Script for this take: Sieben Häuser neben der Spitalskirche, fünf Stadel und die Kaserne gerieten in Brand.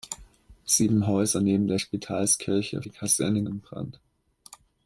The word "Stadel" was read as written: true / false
false